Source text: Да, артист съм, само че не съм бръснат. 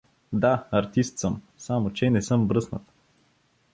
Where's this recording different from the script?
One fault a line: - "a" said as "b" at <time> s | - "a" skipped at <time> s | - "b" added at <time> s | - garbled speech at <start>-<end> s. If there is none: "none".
none